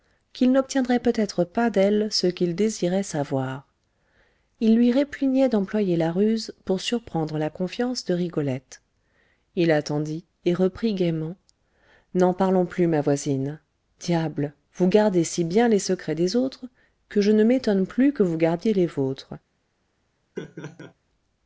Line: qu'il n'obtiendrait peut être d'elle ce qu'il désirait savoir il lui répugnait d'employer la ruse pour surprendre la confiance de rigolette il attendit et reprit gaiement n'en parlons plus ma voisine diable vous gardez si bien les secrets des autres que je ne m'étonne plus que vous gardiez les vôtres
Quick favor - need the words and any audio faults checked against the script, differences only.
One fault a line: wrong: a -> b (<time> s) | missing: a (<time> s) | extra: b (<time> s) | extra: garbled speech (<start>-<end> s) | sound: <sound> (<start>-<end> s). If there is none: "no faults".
extra: pas (1.4 s)
sound: laugh (20.4-20.9 s)